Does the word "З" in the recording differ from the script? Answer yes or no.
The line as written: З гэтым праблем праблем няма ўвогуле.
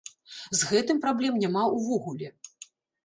no